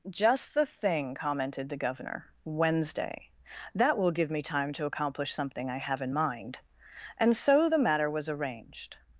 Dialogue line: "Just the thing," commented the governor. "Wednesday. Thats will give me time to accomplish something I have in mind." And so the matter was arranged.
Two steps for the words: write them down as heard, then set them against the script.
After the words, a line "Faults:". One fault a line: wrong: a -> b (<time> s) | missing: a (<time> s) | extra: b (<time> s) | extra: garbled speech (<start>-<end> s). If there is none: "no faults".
"Just the thing," commented the governor. "Wednesday. That will give me time to accomplish something I have in mind." And so the matter was arranged.
Faults:
wrong: Thats -> That (3.8 s)